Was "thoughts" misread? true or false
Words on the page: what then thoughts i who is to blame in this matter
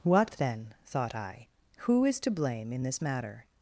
true